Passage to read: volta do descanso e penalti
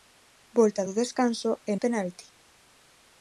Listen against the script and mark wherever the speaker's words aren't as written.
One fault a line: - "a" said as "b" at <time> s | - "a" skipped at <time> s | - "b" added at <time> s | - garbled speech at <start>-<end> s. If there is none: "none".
none